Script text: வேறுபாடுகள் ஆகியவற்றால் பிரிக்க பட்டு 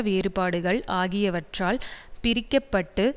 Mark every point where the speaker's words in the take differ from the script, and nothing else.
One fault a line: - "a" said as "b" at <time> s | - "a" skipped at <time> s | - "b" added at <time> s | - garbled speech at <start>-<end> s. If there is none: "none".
none